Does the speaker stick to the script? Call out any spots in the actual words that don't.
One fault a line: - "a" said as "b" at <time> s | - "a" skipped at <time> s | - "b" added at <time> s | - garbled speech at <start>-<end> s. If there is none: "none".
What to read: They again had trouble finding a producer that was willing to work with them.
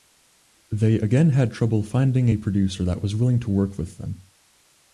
none